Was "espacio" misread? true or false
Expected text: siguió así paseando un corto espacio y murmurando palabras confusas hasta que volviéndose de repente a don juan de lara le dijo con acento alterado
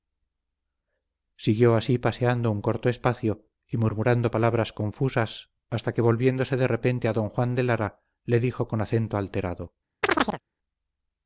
false